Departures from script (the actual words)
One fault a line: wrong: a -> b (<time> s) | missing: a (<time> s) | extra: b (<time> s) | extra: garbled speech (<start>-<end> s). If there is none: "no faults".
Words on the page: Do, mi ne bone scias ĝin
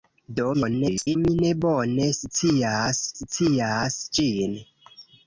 extra: garbled speech (0.5-1.2 s)
extra: scias (3.2 s)